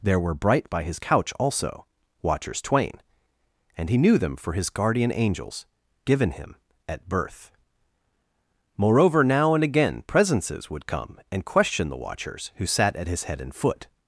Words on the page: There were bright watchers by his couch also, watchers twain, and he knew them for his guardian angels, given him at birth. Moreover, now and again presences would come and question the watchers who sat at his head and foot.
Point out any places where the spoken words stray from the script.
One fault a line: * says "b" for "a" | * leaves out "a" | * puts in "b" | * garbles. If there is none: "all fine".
* leaves out "watchers"